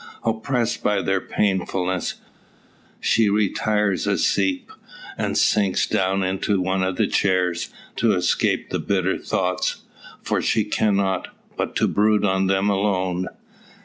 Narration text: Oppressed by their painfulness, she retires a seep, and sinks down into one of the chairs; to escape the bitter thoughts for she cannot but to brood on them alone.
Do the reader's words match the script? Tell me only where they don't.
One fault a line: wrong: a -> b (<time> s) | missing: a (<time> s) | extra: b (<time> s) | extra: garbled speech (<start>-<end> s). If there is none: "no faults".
no faults